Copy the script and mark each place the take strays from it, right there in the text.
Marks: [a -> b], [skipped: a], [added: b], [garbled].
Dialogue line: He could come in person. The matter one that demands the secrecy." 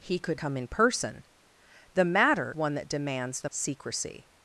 He could come in person. The matter one that demands the secrecy."